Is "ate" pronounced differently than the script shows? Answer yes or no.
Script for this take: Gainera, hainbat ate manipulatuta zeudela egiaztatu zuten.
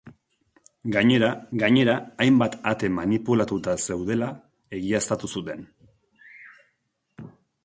no